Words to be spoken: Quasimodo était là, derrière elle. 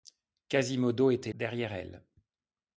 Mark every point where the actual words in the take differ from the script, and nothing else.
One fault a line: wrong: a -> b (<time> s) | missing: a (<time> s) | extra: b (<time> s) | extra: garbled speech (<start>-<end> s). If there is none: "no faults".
missing: là (1.3 s)